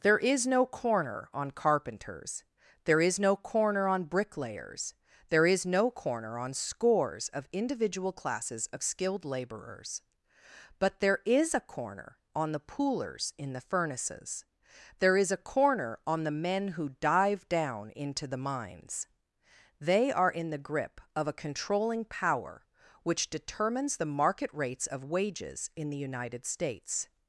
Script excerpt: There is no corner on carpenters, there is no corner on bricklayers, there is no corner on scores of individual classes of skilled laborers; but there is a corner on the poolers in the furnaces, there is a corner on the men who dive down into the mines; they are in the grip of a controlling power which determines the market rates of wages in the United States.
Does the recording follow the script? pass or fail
pass